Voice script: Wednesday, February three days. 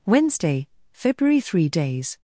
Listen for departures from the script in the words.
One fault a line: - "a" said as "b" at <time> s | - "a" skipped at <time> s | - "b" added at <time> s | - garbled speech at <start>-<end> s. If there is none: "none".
none